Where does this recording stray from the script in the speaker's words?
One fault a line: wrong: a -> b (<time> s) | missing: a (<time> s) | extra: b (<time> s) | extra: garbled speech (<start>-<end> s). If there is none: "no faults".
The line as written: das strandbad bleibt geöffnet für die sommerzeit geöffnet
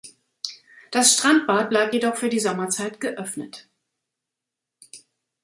wrong: geöffnet -> jedoch (1.9 s)